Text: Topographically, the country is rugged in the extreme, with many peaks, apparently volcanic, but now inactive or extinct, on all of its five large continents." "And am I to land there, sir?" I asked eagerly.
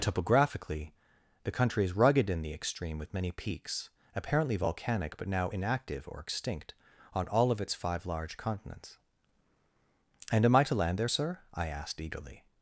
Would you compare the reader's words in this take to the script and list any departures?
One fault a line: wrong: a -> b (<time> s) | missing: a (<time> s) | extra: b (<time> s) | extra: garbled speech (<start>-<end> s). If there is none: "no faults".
no faults